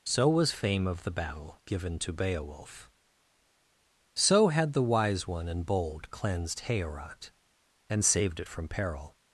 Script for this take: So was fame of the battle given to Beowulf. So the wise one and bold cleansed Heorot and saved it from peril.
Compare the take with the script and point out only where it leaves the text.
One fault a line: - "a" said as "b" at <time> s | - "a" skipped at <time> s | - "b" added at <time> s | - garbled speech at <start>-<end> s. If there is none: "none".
- "had" added at 4.5 s